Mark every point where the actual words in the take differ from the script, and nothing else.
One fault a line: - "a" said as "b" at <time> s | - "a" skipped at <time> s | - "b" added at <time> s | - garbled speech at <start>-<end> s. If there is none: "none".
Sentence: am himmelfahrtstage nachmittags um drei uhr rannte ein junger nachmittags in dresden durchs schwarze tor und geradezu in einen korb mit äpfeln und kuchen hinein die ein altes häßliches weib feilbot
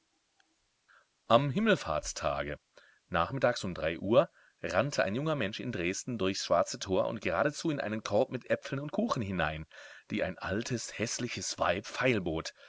- "nachmittags" said as "mensch" at 5.3 s